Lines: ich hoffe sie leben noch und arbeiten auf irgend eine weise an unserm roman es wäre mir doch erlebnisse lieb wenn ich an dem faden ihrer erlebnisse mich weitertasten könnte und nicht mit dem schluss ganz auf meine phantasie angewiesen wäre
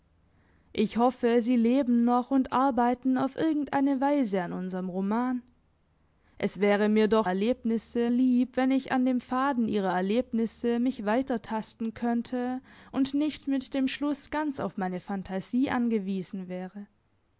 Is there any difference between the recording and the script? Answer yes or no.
no